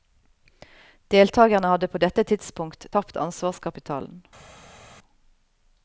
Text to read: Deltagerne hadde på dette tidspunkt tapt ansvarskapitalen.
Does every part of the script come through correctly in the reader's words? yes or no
yes